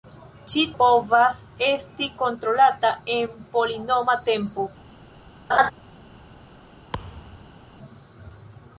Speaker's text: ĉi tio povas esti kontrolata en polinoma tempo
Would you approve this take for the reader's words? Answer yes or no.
no